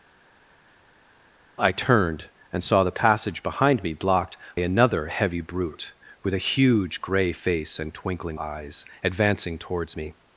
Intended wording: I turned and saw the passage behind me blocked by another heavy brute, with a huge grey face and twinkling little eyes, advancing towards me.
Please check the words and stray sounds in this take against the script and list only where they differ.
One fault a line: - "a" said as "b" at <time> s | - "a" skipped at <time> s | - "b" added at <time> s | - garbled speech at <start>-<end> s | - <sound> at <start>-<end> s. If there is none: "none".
- "by" skipped at 4.4 s
- "little" skipped at 8.4 s